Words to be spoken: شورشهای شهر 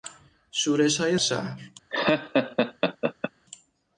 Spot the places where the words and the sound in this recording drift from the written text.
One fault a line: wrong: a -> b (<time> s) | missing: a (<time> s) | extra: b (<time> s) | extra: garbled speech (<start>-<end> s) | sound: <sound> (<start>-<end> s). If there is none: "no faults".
sound: laugh (1.9-3.3 s)